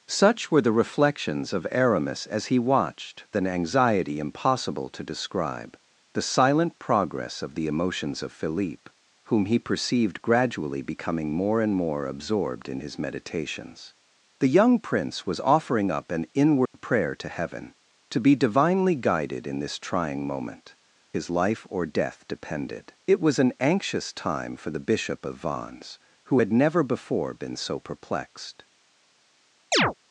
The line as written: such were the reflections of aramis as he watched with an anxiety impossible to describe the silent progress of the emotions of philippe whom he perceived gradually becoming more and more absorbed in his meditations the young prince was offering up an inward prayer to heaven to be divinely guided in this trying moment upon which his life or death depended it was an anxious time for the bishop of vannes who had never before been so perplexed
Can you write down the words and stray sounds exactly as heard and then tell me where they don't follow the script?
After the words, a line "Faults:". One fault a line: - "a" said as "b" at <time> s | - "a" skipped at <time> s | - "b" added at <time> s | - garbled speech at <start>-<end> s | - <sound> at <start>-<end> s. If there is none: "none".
such were the reflections of aramis as he watched an anxiety impossible to describe the silent progress of the emotions of philippe whom he perceived gradually becoming more and more absorbed in his meditations the young prince was offering up an inward prayer to heaven to be divinely guided in this trying moment his life or death depended it was an anxious time for the bishop of vannes who had never before been so perplexed
Faults:
- "with" skipped at 3.3 s
- dropout at 16.7-16.7 s
- "upon which" skipped at 20.8 s
- chirp at 29.7-29.9 s